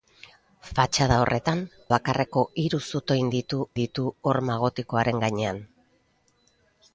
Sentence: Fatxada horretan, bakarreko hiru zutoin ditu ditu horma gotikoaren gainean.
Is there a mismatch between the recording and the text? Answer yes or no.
no